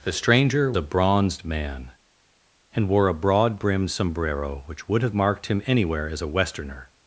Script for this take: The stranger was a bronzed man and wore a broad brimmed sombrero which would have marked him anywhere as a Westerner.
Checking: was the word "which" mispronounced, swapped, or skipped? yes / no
no